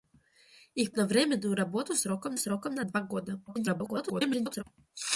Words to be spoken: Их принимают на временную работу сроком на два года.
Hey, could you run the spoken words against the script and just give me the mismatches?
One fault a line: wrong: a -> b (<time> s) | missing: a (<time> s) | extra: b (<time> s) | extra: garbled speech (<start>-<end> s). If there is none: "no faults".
missing: принимают (0.9 s)
extra: сроком (2.4 s)
extra: garbled speech (3.5-4.6 s)